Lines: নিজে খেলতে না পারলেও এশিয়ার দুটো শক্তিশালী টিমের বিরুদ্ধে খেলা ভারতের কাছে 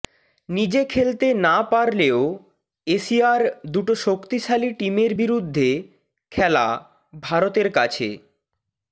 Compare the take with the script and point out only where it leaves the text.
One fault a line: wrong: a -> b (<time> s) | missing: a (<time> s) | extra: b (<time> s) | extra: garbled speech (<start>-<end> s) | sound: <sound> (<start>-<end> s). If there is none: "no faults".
no faults